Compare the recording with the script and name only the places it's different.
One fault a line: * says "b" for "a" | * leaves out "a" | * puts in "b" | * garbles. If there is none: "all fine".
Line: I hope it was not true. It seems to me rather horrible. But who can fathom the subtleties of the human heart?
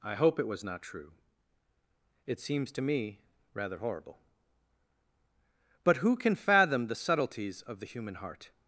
all fine